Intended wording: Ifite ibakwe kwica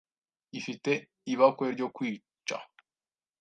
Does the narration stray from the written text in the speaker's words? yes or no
yes